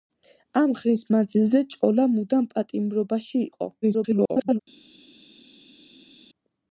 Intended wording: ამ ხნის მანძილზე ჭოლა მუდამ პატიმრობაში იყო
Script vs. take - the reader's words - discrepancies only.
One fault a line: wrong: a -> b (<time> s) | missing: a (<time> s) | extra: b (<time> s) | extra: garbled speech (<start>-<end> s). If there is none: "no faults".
extra: garbled speech (3.8-4.6 s)